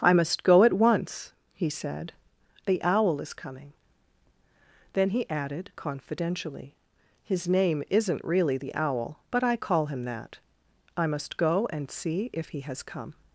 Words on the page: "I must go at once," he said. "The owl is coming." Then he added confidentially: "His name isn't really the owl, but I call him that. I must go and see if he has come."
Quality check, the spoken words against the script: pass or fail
pass